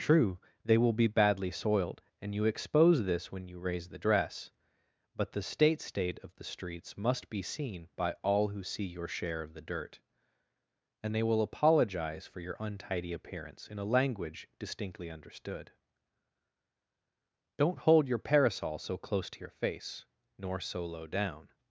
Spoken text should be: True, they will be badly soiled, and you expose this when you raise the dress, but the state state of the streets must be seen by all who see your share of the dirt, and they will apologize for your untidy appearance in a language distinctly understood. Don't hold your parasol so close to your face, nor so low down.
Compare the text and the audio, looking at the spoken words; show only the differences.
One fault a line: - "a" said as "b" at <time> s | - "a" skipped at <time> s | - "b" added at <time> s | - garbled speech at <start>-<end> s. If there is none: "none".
none